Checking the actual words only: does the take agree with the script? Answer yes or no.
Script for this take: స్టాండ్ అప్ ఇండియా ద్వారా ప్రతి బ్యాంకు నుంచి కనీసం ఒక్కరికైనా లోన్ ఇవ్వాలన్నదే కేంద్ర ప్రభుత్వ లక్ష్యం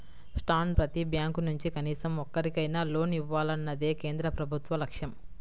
no